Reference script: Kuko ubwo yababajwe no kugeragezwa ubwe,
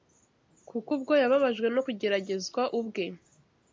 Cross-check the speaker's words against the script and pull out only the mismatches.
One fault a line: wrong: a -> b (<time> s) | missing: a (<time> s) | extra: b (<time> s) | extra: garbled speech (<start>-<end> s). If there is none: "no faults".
no faults